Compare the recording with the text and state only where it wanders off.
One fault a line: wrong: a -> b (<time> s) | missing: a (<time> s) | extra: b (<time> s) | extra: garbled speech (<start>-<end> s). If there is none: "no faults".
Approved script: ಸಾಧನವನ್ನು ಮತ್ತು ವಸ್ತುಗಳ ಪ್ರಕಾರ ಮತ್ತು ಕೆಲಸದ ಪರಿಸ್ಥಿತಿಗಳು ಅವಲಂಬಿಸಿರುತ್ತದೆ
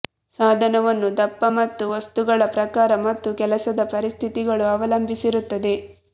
extra: ದಪ್ಪ (1.2 s)